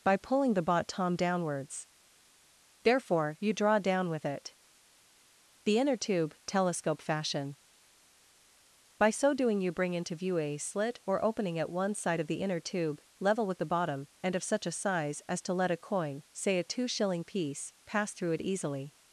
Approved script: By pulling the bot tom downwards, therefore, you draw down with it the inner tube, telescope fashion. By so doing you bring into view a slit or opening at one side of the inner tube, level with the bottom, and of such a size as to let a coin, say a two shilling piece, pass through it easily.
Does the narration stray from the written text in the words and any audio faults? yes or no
no